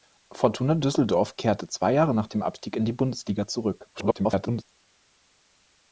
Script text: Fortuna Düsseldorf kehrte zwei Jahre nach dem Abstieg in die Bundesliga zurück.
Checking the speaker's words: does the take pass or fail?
fail